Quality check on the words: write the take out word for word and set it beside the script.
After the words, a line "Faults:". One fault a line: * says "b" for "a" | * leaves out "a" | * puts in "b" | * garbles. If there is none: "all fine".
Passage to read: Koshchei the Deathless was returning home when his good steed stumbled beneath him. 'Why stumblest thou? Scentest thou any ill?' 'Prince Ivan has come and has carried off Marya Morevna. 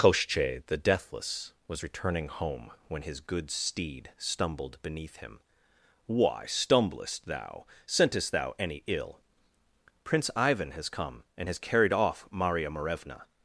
Koshchei the Deathless was returning home when his good steed stumbled beneath him. 'Why stumblest thou? Scentest thou any ill?' 'Prince Ivan has come and has carried off Marya Morevna.
Faults:
all fine